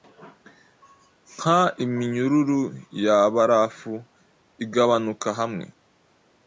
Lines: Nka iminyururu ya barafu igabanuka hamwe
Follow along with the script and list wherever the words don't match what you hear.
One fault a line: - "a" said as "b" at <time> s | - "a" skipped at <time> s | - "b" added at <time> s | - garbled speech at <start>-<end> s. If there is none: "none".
none